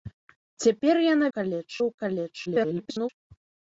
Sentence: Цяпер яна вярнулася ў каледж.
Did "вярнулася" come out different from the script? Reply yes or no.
yes